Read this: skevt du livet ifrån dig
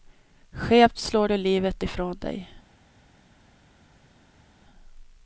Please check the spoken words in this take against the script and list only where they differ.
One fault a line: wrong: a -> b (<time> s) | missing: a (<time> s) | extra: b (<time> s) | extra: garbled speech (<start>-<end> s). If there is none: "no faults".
extra: slår (1.0 s)